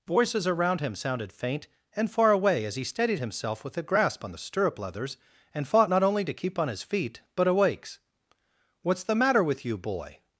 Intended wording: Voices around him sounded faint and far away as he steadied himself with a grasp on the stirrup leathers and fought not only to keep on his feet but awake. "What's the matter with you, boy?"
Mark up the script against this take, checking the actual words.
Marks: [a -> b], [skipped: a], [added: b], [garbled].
Voices around him sounded faint and far away as he steadied himself with a grasp on the stirrup leathers and fought not only to keep on his feet but [awake. -> awakes] "What's the matter with you, boy?"